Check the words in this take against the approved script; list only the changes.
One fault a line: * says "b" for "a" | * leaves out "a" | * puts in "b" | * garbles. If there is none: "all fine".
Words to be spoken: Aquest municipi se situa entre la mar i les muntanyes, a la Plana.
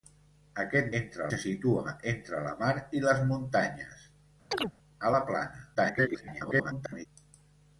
* says "entre" for "municipi"
* garbles